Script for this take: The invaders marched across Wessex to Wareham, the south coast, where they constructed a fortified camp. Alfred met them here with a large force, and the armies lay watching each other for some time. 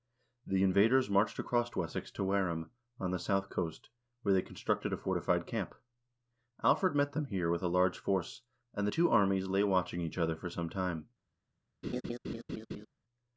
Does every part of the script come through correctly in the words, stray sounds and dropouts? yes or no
no